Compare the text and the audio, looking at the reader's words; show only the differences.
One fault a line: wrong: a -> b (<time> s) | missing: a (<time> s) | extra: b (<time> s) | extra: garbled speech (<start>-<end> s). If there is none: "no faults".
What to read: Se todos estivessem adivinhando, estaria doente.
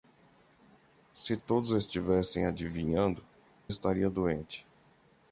no faults